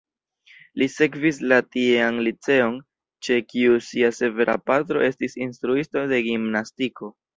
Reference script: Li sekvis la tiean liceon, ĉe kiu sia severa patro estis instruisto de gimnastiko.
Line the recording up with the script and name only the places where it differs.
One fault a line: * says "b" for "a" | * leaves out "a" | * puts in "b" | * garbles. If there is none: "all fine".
all fine